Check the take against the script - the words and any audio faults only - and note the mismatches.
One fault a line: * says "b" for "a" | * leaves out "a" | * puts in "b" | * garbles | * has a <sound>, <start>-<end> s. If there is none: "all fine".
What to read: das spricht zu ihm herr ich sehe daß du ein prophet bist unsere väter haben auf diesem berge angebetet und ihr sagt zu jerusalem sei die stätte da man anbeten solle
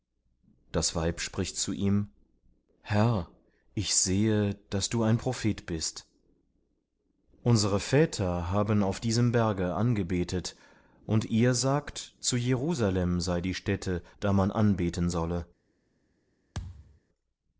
* puts in "weib"
* has a thud, 16.5-17.0 s